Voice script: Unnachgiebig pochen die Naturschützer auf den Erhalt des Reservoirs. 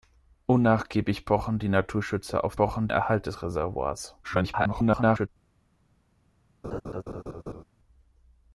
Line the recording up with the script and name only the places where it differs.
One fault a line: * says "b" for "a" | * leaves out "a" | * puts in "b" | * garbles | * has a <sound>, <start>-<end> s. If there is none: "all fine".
* says "pochen" for "den"
* garbles
* has a laugh, 6.6-7.6 s